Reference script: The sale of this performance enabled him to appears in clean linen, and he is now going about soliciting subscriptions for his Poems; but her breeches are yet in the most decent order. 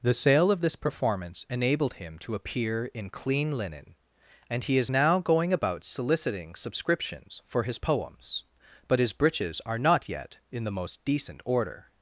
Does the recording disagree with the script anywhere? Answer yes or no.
yes